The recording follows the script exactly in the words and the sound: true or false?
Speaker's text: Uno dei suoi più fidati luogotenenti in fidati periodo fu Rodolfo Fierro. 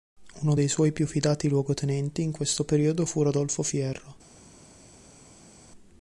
false